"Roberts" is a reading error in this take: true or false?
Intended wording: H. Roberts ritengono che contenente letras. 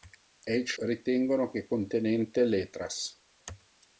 true